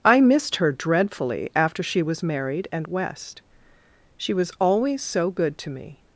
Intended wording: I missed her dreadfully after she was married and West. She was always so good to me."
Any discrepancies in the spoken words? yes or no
no